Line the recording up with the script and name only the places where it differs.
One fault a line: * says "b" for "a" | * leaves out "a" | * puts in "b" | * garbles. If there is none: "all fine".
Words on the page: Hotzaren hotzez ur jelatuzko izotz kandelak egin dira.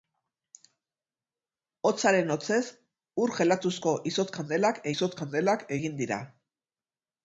* puts in "izotz kandelak"